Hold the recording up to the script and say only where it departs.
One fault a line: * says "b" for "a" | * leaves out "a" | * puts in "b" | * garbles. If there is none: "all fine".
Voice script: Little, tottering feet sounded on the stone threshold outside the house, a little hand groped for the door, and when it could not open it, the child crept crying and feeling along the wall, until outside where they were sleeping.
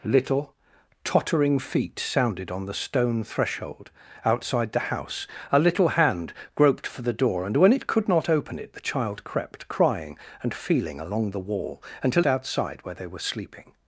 all fine